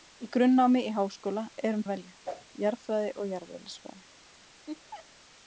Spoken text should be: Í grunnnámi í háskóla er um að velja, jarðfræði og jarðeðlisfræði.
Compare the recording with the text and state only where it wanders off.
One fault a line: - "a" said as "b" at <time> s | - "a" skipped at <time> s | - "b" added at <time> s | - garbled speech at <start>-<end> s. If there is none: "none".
none